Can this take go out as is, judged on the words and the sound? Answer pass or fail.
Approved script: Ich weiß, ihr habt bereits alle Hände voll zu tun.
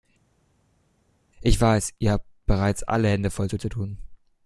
fail